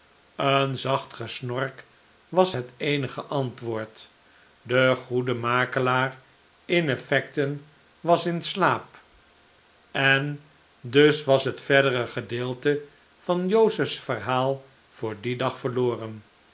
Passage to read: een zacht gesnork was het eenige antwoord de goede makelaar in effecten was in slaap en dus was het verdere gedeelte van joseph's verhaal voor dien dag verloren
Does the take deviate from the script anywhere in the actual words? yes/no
no